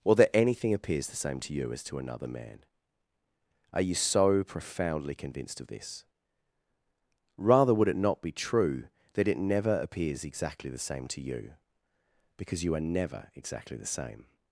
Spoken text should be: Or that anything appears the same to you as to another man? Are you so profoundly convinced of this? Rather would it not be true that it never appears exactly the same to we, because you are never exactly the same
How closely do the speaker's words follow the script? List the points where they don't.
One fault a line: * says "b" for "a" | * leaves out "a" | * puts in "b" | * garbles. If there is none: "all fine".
* says "you" for "we"